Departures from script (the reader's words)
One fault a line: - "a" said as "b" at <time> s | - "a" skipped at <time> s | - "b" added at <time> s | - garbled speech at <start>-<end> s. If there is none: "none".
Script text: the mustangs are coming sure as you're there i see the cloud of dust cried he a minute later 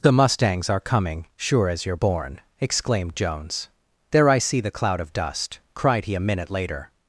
- "born exclaimed jones" added at 1.9 s